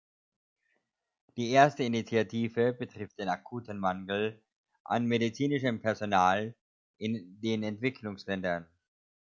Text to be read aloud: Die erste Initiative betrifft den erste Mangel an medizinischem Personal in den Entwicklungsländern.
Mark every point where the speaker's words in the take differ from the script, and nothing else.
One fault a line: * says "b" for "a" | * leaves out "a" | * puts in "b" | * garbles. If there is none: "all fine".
* says "akuten" for "erste"